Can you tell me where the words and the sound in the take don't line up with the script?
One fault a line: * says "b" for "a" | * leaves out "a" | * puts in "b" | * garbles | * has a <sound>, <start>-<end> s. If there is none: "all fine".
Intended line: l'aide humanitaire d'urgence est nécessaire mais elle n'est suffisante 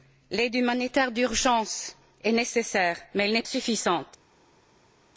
all fine